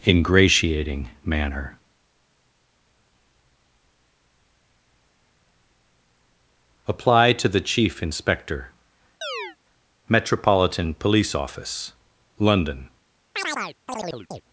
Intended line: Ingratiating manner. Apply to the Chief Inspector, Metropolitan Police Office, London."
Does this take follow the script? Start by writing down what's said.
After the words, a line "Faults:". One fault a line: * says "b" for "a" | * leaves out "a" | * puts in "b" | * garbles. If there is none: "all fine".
Ingratiating manner. Apply to the Chief Inspector, Metropolitan Police Office, London."
Faults:
all fine